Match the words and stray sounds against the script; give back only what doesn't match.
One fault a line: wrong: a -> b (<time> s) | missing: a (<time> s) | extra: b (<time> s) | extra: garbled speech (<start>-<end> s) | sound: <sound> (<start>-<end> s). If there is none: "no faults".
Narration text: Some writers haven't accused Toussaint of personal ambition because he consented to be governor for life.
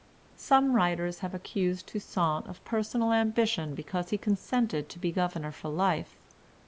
wrong: haven't -> have (1.2 s)